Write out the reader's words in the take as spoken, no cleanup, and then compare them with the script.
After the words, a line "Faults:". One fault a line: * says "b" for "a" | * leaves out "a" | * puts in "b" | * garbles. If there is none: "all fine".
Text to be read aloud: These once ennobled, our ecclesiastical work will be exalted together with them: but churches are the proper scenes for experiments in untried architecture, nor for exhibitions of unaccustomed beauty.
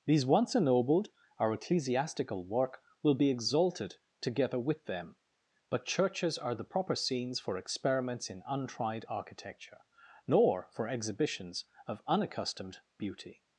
These once ennobled, our ecclesiastical work will be exalted together with them: but churches are the proper scenes for experiments in untried architecture, nor for exhibitions of unaccustomed beauty.
Faults:
all fine